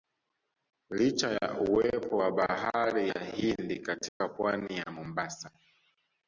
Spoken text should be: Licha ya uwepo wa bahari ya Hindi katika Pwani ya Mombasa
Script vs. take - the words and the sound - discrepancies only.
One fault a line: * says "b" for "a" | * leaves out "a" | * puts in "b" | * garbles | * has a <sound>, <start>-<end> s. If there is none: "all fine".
* has a dropout, 4.1-4.2 s